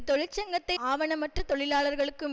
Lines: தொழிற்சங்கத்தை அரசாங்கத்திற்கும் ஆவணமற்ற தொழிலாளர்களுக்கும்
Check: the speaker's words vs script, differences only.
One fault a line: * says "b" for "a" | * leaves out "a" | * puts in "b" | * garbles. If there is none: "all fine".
* leaves out "அரசாங்கத்திற்கும்"